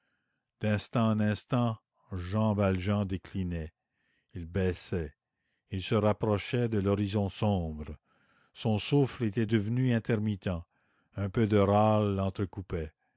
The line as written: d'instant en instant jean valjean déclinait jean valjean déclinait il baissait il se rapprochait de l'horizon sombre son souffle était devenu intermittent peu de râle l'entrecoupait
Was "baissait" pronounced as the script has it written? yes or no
yes